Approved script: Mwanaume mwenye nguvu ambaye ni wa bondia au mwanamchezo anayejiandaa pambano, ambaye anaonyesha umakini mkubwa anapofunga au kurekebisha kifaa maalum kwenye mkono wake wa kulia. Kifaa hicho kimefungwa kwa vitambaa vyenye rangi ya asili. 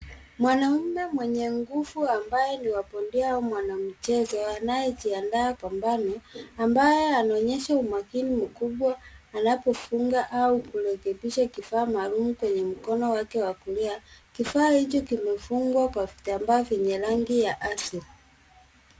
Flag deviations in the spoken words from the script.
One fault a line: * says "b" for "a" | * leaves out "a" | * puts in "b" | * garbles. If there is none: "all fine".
all fine